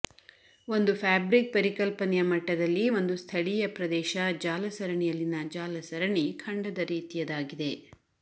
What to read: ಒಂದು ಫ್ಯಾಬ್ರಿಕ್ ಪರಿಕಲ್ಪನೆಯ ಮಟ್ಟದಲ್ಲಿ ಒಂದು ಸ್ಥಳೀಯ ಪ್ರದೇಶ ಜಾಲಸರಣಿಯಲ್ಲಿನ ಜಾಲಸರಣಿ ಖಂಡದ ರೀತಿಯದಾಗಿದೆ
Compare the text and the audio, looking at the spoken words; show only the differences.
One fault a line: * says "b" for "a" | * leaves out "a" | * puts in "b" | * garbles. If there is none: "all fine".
all fine